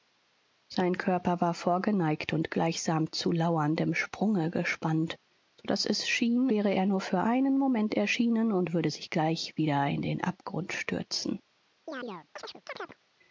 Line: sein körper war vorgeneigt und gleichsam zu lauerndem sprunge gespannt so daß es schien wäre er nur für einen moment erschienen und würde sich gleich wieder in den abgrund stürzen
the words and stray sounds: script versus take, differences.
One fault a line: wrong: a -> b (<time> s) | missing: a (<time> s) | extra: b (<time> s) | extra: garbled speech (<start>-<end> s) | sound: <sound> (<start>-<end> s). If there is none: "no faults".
sound: chirp (11.9-13.0 s)